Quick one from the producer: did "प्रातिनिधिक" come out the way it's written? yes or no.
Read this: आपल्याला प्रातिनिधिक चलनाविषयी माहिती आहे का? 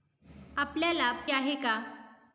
no